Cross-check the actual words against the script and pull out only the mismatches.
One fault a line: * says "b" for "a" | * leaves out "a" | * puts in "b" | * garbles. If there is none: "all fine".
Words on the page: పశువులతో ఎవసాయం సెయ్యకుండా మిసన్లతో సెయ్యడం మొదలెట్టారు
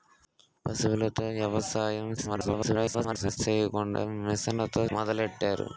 * garbles
* leaves out "సెయ్యడం"